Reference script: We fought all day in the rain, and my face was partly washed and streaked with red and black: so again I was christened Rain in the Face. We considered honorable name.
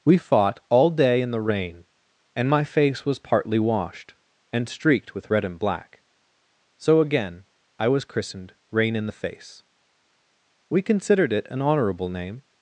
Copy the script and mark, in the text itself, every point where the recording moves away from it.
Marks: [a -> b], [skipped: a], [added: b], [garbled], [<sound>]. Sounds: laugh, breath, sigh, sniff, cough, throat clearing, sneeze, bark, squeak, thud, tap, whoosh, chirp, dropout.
We fought all day in the rain, and my face was partly washed and streaked with red and black: so again I was christened Rain in the Face. We considered [added: it an] honorable name.